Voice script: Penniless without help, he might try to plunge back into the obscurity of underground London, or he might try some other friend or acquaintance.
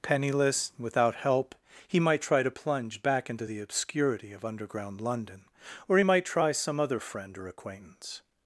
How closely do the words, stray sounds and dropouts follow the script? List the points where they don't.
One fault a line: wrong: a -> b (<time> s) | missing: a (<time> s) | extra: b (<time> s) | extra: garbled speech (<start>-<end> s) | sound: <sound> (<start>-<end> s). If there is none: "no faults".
no faults